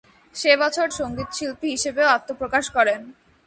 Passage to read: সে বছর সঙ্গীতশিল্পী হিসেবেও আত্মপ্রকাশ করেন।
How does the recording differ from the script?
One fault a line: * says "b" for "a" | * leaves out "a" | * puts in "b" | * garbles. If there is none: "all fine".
all fine